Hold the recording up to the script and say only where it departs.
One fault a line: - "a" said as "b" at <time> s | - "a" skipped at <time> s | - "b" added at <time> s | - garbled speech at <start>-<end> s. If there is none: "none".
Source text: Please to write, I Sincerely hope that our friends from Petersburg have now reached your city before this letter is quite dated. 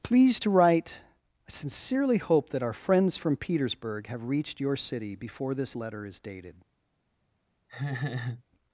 - "now" skipped at 4.2 s
- "quite" skipped at 6.2 s